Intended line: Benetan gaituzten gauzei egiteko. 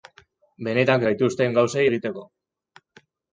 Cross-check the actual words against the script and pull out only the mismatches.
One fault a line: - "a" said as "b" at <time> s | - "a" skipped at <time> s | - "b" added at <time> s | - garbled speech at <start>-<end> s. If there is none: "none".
none